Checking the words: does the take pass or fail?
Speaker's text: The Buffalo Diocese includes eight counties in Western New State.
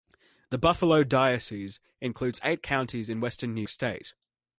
pass